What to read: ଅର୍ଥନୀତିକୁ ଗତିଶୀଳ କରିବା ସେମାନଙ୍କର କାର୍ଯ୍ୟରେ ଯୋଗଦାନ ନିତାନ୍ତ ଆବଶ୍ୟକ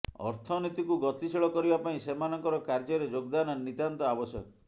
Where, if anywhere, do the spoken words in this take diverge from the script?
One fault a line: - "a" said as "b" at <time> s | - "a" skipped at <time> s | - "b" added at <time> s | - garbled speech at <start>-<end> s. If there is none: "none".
- "ପାଇଁ" added at 1.8 s